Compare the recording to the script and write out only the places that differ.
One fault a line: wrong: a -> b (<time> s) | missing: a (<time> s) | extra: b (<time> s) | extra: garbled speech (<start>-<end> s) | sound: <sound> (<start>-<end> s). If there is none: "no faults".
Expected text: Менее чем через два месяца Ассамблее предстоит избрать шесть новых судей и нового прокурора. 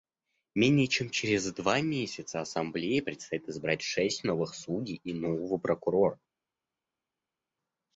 no faults